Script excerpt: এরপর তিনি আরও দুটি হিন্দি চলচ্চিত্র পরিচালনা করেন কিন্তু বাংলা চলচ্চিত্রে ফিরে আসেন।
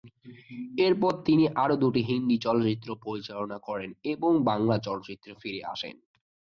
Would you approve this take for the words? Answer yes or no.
no